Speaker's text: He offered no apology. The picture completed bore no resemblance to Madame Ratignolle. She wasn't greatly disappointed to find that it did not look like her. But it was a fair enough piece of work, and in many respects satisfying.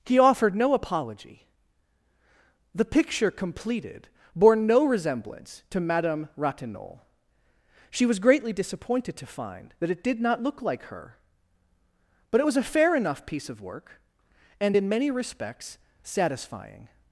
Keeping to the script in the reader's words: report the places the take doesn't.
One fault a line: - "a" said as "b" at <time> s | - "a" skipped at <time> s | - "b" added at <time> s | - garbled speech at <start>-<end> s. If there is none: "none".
- "wasn't" said as "was" at 8.1 s